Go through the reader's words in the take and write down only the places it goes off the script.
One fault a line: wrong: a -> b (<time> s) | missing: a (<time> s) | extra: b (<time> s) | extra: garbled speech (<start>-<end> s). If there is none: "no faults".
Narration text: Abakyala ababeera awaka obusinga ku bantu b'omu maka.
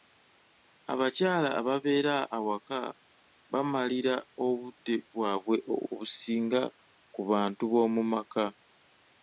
extra: bamalira obudde bwabwe (3.5 s)